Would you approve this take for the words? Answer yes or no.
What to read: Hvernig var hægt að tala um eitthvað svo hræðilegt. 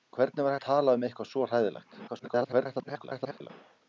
no